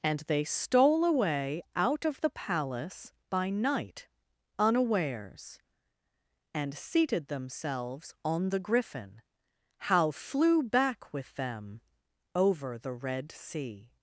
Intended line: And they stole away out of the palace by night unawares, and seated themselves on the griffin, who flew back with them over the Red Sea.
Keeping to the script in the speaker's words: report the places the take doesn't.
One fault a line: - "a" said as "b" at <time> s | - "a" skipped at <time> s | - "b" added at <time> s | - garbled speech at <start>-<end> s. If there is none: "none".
- "who" said as "how" at 9.8 s